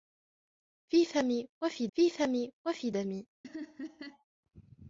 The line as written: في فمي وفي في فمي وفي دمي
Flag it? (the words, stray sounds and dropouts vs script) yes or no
yes